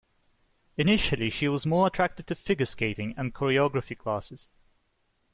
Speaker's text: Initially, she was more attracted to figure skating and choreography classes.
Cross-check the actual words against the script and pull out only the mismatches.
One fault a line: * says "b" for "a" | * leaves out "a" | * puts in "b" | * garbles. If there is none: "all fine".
all fine